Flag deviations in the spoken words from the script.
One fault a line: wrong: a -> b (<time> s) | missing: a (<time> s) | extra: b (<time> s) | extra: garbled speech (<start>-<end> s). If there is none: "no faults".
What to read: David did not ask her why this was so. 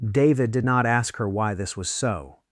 no faults